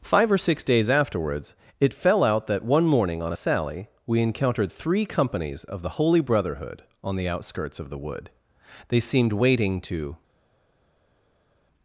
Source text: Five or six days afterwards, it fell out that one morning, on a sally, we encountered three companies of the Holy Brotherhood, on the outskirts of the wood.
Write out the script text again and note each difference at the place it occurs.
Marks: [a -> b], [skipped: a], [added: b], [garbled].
Five or six days afterwards, it fell out that one morning, on a sally, we encountered three companies of the Holy Brotherhood, on the outskirts of the wood. [added: They seemed waiting to]